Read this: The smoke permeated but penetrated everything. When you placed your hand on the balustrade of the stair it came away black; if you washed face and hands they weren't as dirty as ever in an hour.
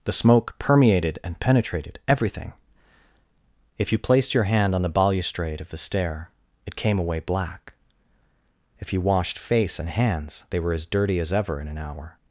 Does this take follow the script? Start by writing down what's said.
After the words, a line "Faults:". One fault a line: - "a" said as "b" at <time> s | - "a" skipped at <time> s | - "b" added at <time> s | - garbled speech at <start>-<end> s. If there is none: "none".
The smoke permeated and penetrated everything. If you placed your hand on the balustrade of the stair it came away black; if you washed face and hands they were as dirty as ever in an hour.
Faults:
- "but" said as "and" at 1.2 s
- "When" said as "If" at 3.8 s
- "weren't" said as "were" at 10.6 s